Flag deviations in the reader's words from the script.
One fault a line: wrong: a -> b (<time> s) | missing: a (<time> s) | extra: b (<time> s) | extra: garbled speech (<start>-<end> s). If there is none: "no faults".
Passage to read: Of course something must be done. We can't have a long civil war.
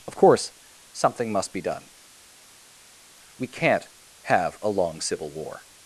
no faults